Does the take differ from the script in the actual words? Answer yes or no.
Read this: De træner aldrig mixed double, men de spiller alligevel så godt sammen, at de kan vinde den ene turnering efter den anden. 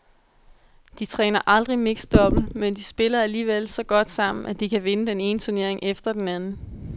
no